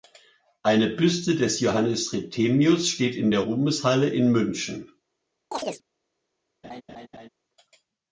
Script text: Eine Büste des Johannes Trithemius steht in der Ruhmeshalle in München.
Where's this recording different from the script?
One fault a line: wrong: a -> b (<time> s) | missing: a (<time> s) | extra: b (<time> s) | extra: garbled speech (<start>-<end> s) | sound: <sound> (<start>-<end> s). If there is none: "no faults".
sound: chirp (5.5-5.8 s)
sound: laugh (6.6-7.3 s)